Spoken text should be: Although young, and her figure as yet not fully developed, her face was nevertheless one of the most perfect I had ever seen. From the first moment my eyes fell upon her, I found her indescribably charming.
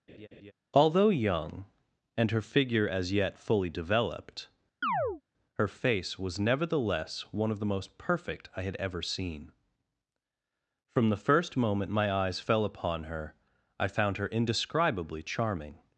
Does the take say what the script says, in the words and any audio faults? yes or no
no